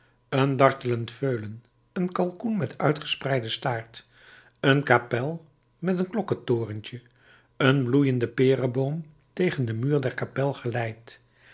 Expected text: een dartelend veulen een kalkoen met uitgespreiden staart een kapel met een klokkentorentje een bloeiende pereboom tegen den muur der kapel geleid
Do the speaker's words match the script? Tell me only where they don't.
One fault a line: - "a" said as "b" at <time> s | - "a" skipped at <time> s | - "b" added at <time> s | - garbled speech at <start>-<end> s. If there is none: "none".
none